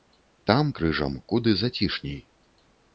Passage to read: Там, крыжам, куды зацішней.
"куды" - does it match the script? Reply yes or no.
yes